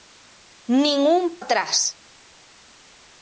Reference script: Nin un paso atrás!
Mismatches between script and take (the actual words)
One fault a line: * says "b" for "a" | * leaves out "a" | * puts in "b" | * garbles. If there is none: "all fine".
* leaves out "paso"